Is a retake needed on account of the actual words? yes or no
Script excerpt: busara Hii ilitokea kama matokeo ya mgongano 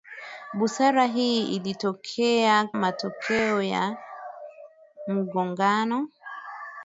yes